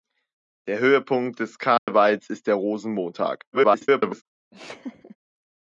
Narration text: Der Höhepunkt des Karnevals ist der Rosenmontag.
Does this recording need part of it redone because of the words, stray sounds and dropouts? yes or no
yes